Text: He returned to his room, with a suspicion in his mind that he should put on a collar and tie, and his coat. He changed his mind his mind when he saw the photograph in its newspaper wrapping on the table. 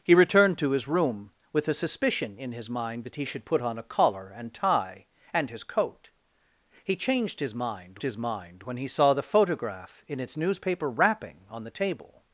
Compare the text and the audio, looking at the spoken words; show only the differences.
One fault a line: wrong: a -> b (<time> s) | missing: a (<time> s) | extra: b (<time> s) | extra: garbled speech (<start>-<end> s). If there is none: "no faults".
no faults